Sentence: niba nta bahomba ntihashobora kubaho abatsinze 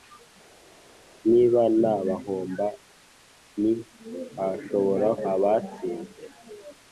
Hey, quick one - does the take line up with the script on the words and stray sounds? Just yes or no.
no